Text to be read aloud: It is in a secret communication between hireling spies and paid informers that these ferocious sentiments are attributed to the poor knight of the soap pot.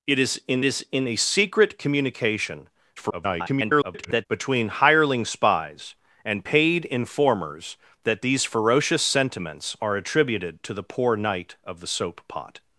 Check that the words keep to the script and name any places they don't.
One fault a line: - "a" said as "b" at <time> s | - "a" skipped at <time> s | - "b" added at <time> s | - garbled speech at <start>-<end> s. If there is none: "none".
- "is in" added at 0.6 s
- garbled speech at 3.0-4.3 s